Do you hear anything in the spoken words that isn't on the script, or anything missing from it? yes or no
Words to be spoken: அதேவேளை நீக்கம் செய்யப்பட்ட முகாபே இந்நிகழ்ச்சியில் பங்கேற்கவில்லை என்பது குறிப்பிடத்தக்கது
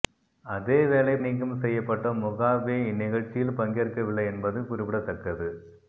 no